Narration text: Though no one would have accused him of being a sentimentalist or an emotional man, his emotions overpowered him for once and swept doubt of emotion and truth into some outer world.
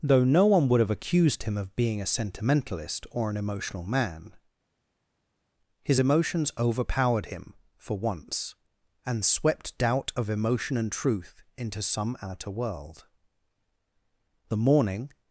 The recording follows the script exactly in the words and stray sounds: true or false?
false